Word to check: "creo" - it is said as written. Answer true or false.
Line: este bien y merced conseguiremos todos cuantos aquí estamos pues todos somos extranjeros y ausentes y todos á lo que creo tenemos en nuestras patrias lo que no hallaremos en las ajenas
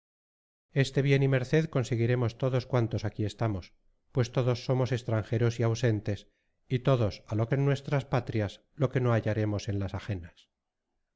false